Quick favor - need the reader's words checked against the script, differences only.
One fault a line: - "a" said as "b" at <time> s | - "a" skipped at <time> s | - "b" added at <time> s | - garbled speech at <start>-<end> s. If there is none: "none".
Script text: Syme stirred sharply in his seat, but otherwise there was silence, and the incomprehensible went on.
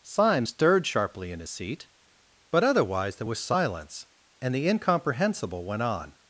none